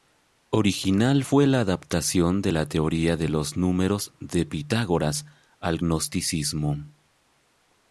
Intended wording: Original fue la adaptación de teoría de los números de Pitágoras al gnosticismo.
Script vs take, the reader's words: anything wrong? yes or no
yes